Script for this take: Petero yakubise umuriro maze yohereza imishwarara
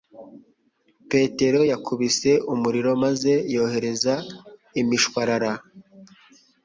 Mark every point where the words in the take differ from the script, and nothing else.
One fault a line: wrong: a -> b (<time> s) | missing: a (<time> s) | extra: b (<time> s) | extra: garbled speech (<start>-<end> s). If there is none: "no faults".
no faults